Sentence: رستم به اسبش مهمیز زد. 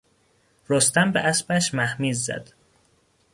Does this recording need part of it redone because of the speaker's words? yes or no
no